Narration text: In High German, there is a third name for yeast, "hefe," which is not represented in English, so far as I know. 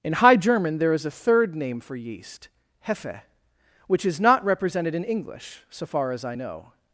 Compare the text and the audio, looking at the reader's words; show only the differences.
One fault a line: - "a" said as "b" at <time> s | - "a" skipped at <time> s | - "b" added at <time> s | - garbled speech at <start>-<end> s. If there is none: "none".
none